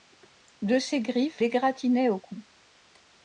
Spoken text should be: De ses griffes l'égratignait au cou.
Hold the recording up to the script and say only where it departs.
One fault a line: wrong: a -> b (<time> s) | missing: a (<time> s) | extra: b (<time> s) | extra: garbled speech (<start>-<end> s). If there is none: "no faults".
no faults